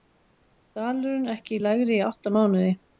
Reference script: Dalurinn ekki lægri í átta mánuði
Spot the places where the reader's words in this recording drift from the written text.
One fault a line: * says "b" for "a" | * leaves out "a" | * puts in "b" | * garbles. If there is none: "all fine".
all fine